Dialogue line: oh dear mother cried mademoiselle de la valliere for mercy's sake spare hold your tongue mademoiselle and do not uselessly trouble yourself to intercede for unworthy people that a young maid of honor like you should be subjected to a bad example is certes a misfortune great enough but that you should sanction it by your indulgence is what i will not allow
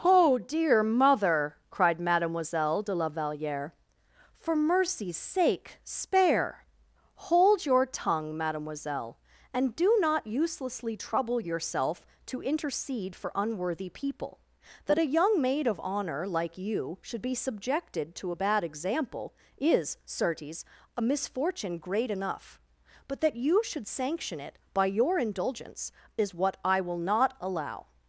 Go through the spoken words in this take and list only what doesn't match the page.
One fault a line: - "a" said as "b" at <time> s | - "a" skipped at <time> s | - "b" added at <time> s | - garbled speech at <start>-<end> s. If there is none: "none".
none